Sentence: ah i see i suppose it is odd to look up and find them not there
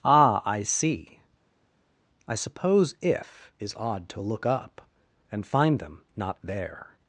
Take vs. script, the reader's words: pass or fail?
fail